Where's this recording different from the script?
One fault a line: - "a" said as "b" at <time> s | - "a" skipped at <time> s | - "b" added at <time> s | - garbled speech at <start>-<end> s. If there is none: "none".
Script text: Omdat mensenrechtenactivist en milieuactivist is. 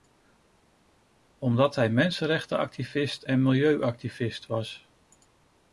- "hij" added at 1.7 s
- "is" said as "was" at 4.5 s